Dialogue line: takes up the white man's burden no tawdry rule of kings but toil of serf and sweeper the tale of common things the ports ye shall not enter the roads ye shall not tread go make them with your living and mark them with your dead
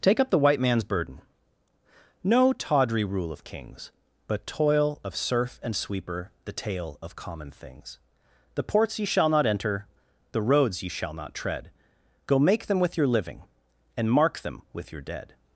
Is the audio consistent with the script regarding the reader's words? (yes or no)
no